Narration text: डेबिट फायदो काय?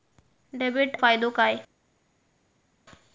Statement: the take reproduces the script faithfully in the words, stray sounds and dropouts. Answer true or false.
true